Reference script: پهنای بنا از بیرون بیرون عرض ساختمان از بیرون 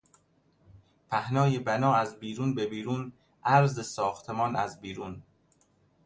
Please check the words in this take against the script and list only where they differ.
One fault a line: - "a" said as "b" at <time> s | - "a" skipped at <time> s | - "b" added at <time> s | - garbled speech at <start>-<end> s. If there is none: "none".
- "به" added at 2.5 s